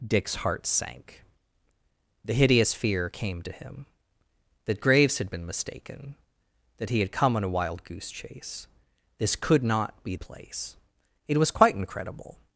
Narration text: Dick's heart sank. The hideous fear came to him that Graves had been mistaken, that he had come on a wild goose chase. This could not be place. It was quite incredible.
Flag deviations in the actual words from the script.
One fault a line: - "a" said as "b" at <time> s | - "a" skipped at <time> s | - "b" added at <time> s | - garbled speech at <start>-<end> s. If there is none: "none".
none